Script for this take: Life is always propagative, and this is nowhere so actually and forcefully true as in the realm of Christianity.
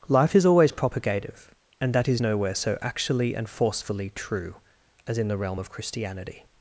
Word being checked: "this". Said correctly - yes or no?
no